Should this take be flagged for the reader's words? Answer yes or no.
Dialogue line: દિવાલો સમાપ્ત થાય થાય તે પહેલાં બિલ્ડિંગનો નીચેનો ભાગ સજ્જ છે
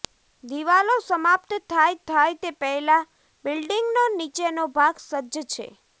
no